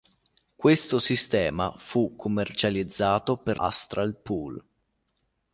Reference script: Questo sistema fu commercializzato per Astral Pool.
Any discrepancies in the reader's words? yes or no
no